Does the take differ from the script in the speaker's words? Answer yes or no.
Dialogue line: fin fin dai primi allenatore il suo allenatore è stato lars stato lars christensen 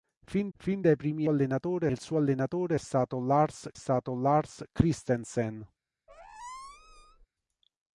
no